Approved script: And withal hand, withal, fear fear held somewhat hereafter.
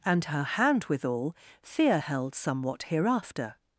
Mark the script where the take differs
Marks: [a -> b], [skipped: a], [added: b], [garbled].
And [withal -> her] hand, withal, fear [skipped: fear] held somewhat hereafter.